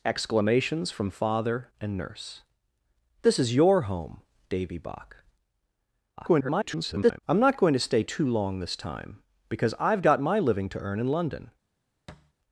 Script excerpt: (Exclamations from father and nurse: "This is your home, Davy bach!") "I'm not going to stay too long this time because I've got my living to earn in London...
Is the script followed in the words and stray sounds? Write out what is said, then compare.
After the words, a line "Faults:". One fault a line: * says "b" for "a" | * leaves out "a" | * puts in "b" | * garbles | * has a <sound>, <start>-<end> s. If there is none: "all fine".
(Exclamations from father and nurse: "This is your home, Davy bach!") [garbled] "I'm not going to stay too long this time because I've got my living to earn in London...
Faults:
* garbles
* has a thud, 12.1-12.3 s